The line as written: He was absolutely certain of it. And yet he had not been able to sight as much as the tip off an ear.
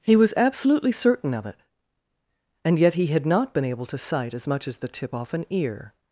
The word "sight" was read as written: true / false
true